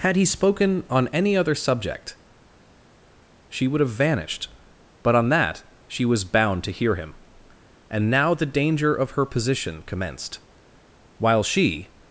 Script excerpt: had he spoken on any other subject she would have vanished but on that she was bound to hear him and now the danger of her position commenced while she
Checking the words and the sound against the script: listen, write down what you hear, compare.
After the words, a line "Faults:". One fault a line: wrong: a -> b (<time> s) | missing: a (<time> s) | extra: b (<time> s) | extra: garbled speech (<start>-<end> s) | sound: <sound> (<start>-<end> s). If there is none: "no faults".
had he spoken on any other subject she would have vanished but on that she was bound to hear him and now the danger of her position commenced while she
Faults:
no faults